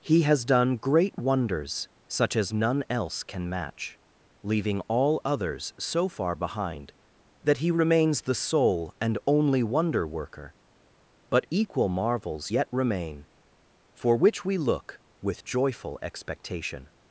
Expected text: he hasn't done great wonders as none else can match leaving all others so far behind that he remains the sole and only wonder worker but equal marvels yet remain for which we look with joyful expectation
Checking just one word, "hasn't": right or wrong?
wrong